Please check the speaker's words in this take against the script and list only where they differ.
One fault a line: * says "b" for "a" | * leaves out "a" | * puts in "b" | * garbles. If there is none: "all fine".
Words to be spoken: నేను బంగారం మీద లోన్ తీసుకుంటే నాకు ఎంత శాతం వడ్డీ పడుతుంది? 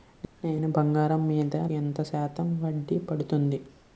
* leaves out "లోన్ తీసుకుంటే నాకు"